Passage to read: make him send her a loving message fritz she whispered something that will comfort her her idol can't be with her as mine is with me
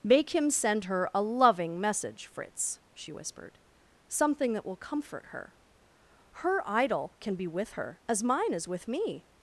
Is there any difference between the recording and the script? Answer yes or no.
yes